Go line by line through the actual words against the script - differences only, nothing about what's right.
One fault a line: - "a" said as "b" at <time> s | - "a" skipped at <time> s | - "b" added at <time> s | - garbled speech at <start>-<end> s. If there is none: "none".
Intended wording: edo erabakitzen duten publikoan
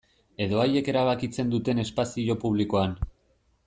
- "haiek" added at 0.6 s
- "espazio" added at 1.9 s